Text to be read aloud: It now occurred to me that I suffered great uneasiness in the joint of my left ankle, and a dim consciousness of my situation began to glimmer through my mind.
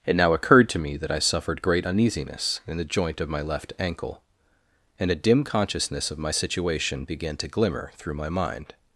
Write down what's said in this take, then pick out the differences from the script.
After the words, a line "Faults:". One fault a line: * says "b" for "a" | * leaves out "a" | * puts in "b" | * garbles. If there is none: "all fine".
It now occurred to me that I suffered great uneasiness in the joint of my left ankle, and a dim consciousness of my situation began to glimmer through my mind.
Faults:
all fine